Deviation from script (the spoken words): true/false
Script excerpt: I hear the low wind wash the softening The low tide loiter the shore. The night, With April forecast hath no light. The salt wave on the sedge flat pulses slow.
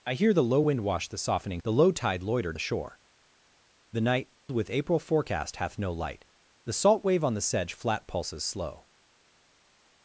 false